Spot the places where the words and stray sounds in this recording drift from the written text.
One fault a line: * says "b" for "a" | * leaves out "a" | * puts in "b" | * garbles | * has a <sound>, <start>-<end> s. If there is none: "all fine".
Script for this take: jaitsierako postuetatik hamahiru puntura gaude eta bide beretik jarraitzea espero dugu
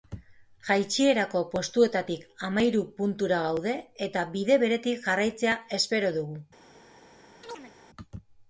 * has a chirp, 7.4-7.7 s